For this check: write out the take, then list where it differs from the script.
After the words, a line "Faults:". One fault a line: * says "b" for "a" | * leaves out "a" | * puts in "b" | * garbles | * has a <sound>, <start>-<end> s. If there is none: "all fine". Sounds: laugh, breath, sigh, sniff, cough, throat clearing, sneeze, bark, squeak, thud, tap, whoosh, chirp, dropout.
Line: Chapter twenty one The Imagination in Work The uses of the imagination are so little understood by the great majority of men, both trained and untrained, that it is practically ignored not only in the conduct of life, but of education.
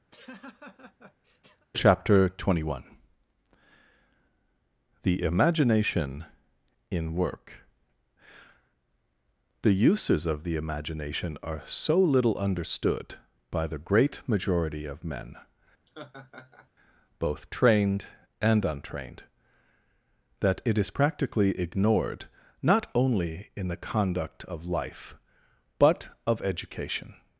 Chapter twenty one The Imagination in Work The uses of the imagination are so little understood by the great majority of men, both trained and untrained, that it is practically ignored not only in the conduct of life, but of education.
Faults:
* has a laugh, 0.1-1.7 s
* has a laugh, 15.9-16.7 s